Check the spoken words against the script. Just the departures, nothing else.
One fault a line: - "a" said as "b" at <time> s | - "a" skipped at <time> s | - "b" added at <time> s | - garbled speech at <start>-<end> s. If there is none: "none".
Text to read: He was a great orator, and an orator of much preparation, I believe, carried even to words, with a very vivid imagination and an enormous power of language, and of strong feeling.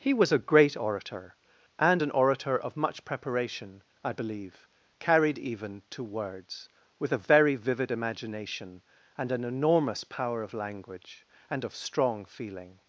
none